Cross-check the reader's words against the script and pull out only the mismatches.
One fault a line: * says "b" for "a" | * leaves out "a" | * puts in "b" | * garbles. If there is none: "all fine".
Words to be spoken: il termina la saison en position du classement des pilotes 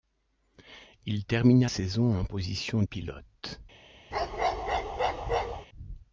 * leaves out "la"
* leaves out "du classement des"